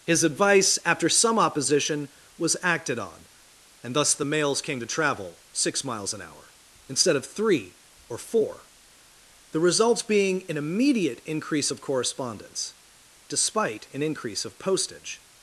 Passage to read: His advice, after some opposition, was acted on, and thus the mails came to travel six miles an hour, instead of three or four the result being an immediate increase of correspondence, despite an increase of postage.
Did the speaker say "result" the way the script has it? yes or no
no